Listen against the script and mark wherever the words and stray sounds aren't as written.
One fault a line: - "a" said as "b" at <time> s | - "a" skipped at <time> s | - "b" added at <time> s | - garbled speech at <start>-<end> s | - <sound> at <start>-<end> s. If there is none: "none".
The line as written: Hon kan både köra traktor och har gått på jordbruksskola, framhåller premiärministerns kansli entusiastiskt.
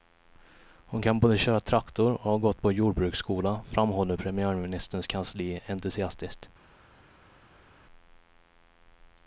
none